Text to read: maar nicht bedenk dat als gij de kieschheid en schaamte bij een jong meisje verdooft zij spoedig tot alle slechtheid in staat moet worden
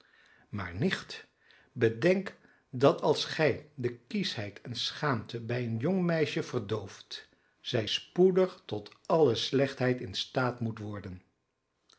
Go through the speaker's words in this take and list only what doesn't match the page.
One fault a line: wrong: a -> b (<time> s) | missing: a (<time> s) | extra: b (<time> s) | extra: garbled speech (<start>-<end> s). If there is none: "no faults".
no faults